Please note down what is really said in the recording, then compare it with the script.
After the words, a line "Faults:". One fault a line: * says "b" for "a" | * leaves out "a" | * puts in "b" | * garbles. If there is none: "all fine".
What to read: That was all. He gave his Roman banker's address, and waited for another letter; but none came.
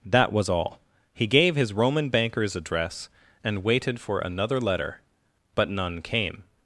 That was all. He gave his Roman banker's address, and waited for another letter; but none came.
Faults:
all fine